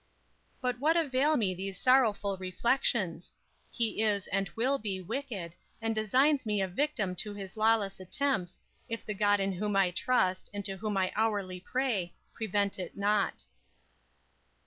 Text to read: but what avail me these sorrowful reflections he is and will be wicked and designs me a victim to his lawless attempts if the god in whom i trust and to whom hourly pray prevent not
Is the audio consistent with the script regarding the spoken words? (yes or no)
no